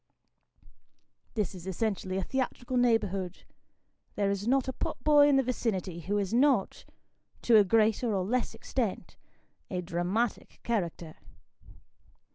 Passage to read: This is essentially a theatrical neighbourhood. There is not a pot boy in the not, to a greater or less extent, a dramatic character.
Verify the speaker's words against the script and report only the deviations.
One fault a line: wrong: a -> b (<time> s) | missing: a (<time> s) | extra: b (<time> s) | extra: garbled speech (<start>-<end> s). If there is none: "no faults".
extra: vicinity who is (5.4 s)